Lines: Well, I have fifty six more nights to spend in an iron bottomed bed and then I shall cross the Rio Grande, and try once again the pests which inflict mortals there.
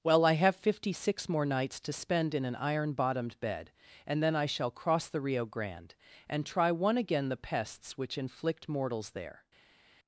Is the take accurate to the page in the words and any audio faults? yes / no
no